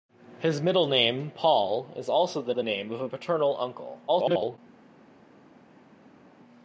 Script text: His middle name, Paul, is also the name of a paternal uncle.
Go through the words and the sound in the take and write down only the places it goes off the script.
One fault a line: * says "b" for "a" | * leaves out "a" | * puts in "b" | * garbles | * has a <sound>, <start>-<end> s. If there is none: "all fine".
* puts in "the"
* garbles